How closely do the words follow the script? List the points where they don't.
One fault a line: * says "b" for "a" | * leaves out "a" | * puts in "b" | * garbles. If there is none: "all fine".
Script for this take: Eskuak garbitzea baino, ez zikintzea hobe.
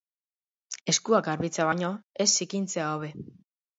all fine